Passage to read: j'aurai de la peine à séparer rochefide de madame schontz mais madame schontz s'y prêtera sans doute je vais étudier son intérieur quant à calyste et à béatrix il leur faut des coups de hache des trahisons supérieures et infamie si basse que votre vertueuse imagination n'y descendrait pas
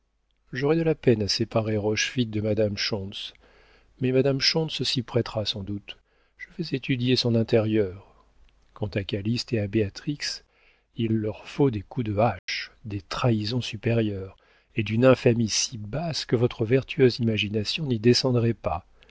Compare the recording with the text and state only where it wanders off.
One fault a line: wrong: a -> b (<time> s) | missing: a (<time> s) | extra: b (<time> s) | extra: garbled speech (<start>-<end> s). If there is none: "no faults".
extra: d'une (14.8 s)